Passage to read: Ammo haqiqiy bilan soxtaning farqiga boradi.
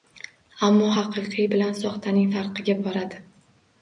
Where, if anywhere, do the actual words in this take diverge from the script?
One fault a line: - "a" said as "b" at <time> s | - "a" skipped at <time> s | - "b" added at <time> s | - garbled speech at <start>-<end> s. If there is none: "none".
none